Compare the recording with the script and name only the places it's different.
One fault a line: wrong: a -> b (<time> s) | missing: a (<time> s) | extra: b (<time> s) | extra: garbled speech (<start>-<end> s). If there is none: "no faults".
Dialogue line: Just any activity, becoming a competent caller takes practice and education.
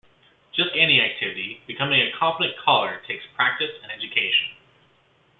no faults